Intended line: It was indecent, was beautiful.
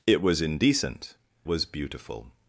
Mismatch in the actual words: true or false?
false